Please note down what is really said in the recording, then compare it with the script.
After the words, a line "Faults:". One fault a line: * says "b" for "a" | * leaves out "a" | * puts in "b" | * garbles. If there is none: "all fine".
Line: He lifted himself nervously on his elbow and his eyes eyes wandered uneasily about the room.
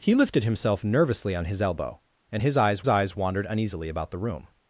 He lifted himself nervously on his elbow and his eyes eyes wandered uneasily about the room.
Faults:
all fine